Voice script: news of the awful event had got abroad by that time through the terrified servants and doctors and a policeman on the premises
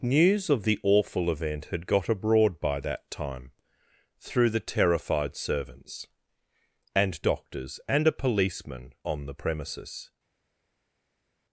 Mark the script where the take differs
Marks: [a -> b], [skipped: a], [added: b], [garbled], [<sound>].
news of the awful event had got abroad by that time through the terrified servants and doctors and a policeman on the premises